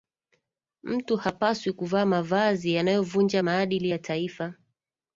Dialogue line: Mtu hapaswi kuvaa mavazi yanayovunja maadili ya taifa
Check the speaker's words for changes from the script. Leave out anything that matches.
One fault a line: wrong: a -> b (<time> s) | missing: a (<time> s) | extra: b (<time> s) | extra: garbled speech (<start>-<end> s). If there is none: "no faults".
no faults